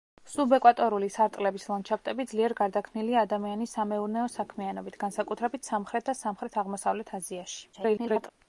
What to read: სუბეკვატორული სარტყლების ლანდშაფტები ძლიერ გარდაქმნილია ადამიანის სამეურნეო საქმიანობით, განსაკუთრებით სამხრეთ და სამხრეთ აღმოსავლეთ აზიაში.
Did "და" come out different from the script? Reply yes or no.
no